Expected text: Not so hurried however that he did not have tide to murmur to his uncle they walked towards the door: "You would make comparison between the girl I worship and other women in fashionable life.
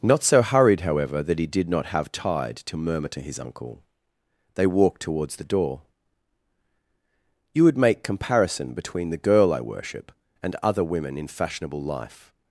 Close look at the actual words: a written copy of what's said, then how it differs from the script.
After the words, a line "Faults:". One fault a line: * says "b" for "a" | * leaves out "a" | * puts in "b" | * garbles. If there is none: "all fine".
Not so hurried however that he did not have tide to murmur to his uncle they walked towards the door: "You would make comparison between the girl I worship and other women in fashionable life.
Faults:
all fine